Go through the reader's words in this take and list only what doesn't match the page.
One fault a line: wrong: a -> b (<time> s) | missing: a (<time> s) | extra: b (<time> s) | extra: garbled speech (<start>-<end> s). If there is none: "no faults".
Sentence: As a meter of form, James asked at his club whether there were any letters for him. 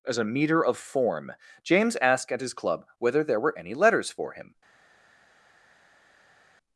no faults